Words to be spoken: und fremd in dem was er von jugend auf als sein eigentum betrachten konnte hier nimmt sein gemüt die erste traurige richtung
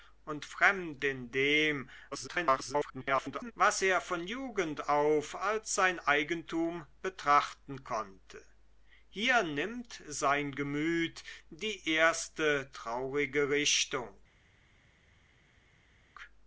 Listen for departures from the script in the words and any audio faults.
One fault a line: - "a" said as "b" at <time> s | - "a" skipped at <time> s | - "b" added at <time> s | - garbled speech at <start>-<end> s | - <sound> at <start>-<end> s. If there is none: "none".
- garbled speech at 2.1-3.5 s